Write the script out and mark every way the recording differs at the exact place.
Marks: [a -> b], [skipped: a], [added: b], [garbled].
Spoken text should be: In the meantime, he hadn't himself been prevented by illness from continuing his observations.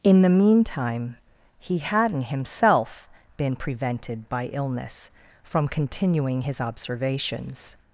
In the meantime, he hadn't himself been prevented by illness from continuing his observations.